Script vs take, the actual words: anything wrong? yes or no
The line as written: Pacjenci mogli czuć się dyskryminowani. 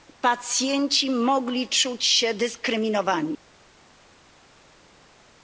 no